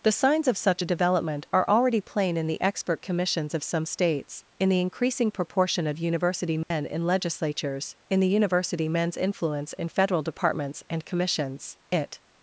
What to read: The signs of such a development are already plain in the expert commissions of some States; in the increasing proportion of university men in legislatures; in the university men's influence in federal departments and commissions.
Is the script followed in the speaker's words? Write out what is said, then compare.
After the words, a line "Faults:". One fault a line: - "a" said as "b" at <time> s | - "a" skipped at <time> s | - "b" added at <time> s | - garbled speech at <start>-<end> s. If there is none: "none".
The signs of such a development are already plain in the expert commissions of some States; in the increasing proportion of university men in legislatures; in the university men's influence in federal departments and commissions. It
Faults:
- "It" added at 11.9 s